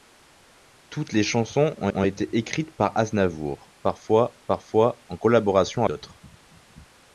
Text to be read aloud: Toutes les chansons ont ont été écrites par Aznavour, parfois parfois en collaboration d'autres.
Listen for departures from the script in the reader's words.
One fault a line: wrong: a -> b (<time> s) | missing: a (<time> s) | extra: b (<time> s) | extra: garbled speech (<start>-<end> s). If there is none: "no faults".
no faults